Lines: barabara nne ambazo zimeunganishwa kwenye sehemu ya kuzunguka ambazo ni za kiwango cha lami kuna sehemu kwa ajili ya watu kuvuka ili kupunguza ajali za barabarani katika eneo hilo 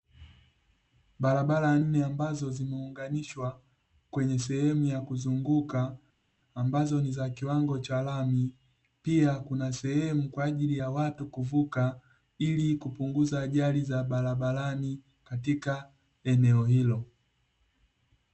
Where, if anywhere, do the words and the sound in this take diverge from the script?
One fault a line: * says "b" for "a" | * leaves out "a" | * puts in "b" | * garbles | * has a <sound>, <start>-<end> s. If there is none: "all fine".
* puts in "pia"